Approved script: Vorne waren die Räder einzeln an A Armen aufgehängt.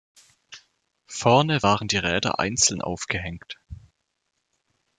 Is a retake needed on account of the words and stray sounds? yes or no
yes